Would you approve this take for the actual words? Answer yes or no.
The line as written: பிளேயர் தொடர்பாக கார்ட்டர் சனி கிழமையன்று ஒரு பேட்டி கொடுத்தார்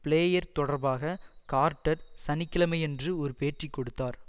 yes